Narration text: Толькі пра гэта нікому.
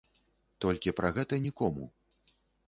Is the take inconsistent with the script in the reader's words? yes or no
no